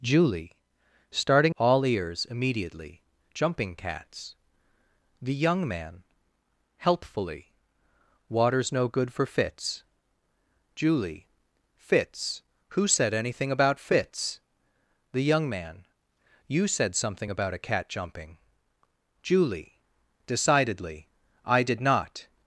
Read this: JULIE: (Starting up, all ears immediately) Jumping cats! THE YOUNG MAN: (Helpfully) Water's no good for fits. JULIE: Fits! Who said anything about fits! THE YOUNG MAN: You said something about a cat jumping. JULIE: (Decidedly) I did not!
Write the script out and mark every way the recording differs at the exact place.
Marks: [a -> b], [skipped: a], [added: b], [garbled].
JULIE: (Starting [skipped: up,] all ears immediately) Jumping cats! THE YOUNG MAN: (Helpfully) Water's no good for fits. JULIE: Fits! Who said anything about fits! THE YOUNG MAN: You said something about a cat jumping. JULIE: (Decidedly) I did not!